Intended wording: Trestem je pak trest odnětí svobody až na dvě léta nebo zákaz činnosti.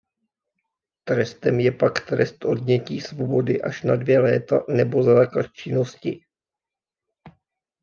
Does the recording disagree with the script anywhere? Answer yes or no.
no